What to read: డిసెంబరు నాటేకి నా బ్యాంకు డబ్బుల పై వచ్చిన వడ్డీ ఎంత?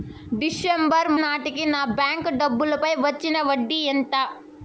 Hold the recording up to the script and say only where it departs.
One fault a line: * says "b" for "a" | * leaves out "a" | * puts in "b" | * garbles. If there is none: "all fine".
all fine